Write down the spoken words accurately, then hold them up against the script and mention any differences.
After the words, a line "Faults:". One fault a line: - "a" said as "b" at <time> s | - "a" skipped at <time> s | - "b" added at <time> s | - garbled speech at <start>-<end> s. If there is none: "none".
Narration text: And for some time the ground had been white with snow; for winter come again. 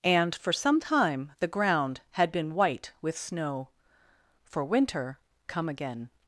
And for some time the ground had been white with snow; for winter come again.
Faults:
none